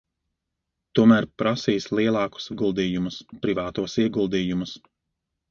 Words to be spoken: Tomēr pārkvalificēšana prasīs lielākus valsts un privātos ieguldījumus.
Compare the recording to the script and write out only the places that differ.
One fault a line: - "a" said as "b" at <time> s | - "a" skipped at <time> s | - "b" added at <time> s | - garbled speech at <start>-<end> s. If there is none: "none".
- "pārkvalificēšana" skipped at 1.3 s
- "valsts" said as "ieguldījumus" at 2.5 s